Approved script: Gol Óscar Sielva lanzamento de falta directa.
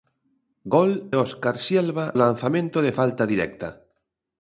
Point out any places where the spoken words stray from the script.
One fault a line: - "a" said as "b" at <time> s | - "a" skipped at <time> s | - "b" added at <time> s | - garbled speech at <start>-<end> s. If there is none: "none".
none